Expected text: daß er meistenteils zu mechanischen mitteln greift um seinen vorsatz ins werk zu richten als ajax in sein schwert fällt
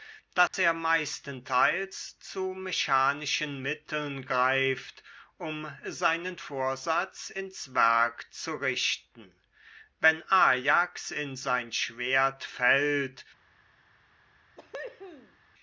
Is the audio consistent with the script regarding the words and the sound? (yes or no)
no